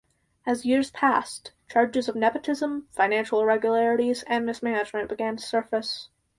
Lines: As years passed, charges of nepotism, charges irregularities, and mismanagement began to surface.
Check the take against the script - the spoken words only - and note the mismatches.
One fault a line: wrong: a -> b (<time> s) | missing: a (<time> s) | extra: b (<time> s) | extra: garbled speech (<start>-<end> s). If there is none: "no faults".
wrong: charges -> financial (2.9 s)